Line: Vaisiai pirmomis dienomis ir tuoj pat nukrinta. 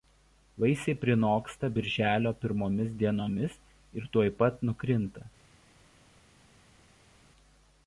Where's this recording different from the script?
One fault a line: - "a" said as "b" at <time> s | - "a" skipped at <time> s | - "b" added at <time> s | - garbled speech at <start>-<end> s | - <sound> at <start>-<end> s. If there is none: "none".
- "prinoksta birželio" added at 1.0 s